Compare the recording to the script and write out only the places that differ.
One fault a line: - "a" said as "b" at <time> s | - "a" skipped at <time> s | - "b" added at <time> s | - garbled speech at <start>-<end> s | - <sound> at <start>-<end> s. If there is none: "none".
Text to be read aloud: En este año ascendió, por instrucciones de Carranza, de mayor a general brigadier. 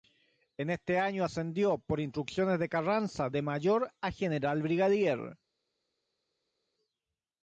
none